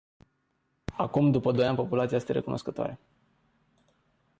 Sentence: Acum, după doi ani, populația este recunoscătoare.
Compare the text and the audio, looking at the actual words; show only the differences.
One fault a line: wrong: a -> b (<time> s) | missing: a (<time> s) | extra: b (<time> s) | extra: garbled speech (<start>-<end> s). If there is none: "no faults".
no faults